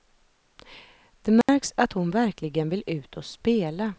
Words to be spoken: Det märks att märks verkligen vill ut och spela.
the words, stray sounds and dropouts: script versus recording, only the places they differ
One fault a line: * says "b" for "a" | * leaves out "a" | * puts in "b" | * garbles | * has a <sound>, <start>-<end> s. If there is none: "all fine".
* has a dropout, 1.4-1.5 s
* says "hon" for "märks"